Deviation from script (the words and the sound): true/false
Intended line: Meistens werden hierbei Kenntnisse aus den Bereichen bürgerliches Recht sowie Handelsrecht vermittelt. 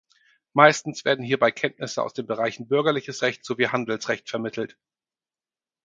false